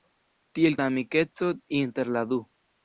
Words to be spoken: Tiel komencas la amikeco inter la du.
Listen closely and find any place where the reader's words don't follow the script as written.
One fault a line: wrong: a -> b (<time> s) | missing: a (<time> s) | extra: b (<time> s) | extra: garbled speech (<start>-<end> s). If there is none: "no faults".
missing: komencas (0.8 s)